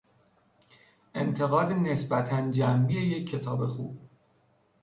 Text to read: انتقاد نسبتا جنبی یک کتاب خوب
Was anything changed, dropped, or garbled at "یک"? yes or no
no